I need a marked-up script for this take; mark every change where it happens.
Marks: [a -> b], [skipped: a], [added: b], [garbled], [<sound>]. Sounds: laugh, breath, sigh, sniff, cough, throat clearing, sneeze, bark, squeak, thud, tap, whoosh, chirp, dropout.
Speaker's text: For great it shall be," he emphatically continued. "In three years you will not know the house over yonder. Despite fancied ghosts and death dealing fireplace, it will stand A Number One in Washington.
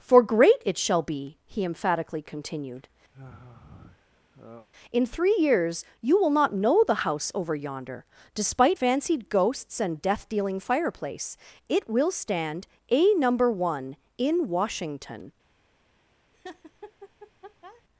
For great it shall be," he emphatically continued. [sigh] "In three years you will not know the house over yonder. Despite fancied ghosts and death dealing fireplace, it will stand A Number One in Washington. [laugh]